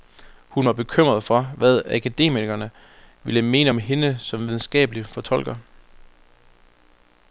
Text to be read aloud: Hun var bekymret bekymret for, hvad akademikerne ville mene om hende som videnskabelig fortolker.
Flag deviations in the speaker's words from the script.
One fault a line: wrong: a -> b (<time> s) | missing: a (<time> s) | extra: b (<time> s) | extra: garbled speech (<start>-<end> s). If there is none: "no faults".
missing: bekymret (1.2 s)